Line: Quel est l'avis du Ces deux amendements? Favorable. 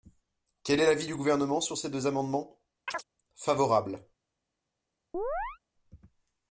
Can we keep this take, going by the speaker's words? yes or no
no